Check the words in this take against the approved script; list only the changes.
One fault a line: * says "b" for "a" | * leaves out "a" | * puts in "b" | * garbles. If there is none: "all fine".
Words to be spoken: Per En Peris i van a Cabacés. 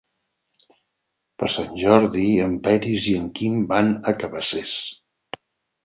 * puts in "Sant Jordi"
* puts in "en Quim"